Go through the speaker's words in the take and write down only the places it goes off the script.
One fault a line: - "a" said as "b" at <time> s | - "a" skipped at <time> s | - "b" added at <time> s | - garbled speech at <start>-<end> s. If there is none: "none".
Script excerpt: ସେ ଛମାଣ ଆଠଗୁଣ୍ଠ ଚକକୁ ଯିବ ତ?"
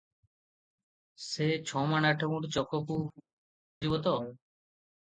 none